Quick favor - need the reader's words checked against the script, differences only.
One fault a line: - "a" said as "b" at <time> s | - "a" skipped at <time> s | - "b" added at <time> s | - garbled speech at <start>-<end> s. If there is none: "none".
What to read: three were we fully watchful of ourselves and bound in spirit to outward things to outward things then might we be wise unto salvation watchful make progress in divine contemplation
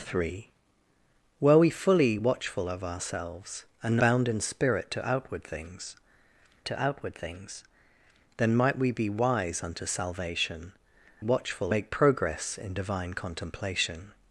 none